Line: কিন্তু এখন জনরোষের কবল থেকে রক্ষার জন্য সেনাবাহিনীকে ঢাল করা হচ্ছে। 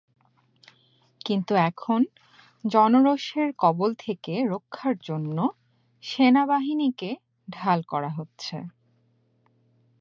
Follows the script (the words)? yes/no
yes